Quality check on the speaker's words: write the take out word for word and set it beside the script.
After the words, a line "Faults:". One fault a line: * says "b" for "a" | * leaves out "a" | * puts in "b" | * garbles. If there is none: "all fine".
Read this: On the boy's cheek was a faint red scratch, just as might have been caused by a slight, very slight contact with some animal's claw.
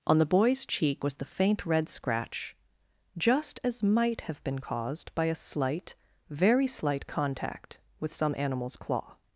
On the boy's cheek was the faint red scratch, just as might have been caused by a slight, very slight contact with some animal's claw.
Faults:
* says "the" for "a"